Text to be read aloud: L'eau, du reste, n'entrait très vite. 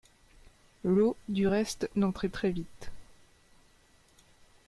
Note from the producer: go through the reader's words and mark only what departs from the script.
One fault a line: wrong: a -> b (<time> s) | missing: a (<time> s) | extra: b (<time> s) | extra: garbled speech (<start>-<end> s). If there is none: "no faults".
no faults